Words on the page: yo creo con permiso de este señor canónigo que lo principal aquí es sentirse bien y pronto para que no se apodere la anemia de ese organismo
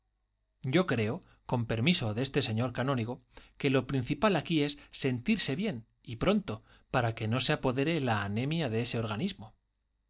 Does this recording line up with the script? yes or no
yes